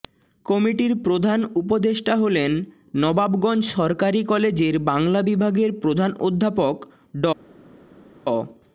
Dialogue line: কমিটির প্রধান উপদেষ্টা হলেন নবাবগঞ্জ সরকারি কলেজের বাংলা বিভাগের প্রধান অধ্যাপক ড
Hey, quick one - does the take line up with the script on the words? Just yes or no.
yes